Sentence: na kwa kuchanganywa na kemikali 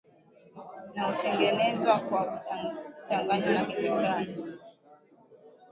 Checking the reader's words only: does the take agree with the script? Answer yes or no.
no